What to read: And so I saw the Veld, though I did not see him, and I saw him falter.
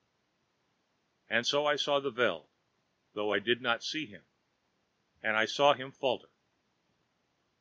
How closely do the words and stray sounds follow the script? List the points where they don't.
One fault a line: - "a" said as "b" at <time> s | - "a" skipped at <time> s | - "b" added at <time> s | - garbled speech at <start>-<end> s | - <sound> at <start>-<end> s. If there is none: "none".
none